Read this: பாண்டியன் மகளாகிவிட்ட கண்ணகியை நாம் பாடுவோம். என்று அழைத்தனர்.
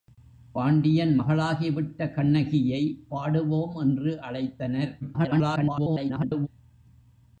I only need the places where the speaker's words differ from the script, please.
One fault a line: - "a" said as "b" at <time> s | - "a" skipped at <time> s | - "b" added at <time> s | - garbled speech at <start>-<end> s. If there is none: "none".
- "நாம்" skipped at 2.8 s
- garbled speech at 5.0-6.5 s